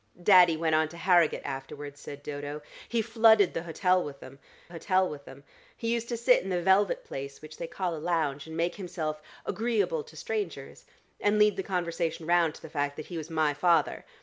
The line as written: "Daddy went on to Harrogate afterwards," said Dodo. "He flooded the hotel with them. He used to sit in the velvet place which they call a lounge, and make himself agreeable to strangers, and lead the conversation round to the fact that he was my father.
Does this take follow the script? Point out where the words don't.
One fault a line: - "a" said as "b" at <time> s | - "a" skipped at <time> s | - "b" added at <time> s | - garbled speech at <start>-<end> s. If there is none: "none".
- "hotel with them" added at 4.7 s